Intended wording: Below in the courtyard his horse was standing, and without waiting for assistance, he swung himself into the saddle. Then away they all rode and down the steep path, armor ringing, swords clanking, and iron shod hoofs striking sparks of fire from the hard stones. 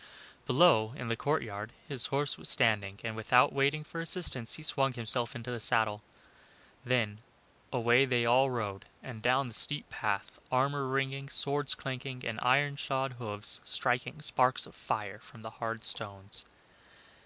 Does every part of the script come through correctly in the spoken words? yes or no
yes